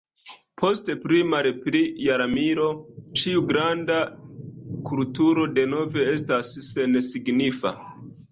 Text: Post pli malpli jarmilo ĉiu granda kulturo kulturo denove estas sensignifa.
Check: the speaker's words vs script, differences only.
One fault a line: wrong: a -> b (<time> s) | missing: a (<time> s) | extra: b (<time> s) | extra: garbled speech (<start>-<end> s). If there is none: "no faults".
missing: kulturo (5.5 s)